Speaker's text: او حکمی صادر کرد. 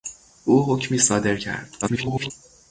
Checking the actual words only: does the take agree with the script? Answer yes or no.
no